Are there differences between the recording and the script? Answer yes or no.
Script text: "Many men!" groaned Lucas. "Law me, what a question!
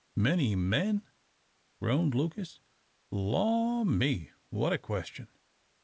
no